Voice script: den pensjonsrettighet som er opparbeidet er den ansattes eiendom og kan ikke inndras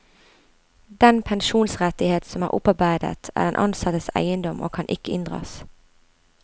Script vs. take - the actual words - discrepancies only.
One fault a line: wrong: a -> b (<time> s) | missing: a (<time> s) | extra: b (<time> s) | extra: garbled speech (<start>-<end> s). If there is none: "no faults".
no faults